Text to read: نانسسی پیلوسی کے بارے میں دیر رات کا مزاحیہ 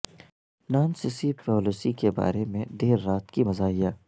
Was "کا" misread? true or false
true